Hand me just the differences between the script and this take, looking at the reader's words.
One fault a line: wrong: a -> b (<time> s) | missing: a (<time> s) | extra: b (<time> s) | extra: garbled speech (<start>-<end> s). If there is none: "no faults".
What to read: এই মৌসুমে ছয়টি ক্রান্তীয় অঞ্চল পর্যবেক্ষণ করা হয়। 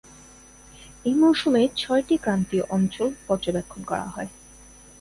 no faults